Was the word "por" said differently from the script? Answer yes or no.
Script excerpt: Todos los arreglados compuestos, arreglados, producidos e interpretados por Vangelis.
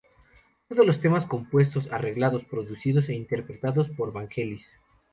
no